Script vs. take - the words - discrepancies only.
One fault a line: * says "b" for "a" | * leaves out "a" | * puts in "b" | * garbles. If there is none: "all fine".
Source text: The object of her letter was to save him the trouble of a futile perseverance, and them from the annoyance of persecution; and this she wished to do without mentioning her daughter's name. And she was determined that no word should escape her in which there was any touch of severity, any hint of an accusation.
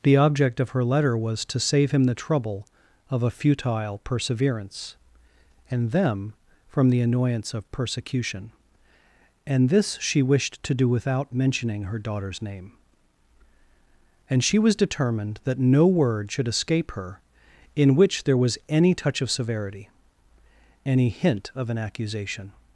all fine